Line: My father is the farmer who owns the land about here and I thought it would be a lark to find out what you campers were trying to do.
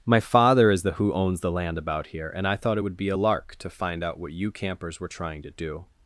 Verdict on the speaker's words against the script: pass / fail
fail